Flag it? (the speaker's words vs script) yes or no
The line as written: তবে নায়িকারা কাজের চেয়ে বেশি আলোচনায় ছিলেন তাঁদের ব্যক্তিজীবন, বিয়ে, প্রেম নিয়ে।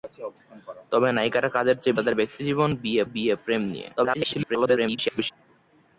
yes